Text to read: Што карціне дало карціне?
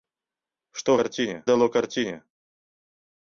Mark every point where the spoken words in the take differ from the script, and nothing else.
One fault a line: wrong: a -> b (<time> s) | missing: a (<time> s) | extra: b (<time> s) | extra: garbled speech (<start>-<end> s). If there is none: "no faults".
no faults